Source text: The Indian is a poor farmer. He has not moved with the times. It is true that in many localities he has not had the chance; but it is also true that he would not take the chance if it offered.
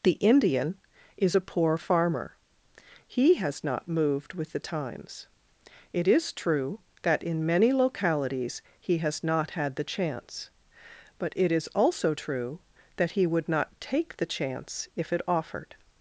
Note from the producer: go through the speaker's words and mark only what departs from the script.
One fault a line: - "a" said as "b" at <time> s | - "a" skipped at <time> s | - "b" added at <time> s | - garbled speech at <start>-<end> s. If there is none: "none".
none